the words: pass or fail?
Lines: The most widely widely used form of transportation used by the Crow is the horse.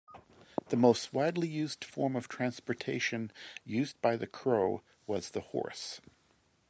fail